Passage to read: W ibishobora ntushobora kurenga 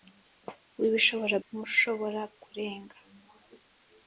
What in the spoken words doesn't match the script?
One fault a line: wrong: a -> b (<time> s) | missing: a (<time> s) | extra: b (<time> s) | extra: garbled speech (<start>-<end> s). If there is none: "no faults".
no faults